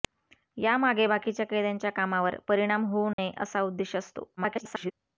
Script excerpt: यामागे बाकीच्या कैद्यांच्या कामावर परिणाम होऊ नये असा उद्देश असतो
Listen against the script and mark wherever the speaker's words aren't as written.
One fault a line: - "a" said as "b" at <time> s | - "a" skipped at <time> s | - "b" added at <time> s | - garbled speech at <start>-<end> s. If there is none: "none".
- garbled speech at 4.4-4.9 s